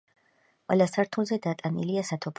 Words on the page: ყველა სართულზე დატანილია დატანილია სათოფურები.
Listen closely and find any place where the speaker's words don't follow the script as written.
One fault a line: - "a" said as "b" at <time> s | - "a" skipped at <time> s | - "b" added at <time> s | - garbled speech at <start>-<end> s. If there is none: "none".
- "დატანილია" skipped at 2.0 s